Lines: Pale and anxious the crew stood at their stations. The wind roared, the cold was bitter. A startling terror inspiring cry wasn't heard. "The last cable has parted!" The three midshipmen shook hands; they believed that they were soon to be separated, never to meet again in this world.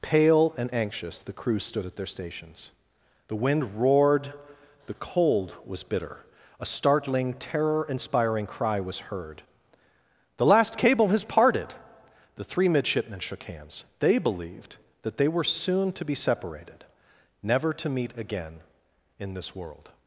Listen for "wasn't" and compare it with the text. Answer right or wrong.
wrong